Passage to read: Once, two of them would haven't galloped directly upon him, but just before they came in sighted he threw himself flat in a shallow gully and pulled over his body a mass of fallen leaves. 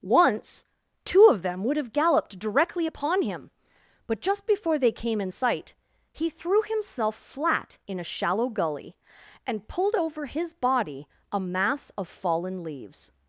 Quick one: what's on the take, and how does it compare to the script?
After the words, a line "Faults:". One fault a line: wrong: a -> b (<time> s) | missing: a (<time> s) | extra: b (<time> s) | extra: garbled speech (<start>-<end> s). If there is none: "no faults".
Once, two of them would have galloped directly upon him, but just before they came in sight he threw himself flat in a shallow gully and pulled over his body a mass of fallen leaves.
Faults:
wrong: haven't -> have (1.8 s)
wrong: sighted -> sight (5.3 s)